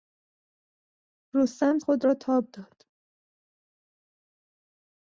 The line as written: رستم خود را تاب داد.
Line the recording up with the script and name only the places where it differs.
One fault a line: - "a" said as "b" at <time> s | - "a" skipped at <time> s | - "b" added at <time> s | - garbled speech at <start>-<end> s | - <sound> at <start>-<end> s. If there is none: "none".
none